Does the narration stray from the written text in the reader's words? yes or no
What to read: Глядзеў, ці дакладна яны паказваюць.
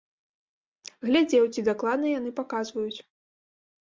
no